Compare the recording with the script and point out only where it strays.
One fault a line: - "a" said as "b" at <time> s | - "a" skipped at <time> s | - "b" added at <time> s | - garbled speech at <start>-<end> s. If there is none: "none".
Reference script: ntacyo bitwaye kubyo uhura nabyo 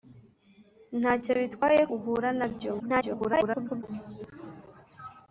- "kubyo" skipped at 1.8 s
- garbled speech at 2.8-3.8 s